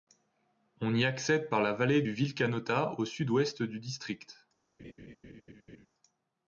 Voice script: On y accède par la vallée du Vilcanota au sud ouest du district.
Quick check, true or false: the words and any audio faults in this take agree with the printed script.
false